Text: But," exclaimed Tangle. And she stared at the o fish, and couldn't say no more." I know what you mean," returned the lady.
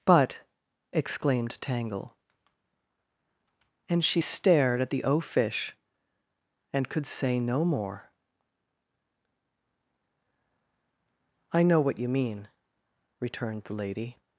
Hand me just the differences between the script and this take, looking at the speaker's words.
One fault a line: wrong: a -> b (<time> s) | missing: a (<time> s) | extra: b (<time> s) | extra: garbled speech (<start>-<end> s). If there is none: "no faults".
wrong: couldn't -> could (6.9 s)